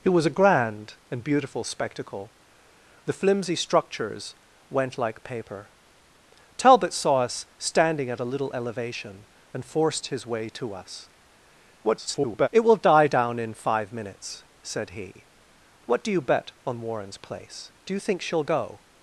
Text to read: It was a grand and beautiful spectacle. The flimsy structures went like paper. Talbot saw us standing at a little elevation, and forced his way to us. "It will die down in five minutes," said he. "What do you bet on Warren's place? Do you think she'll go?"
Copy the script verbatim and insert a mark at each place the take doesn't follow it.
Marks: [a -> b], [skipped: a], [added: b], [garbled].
It was a grand and beautiful spectacle. The flimsy structures went like paper. Talbot saw us standing at a little elevation, and forced his way to us. [garbled] "It will die down in five minutes," said he. "What do you bet on Warren's place? Do you think she'll go?"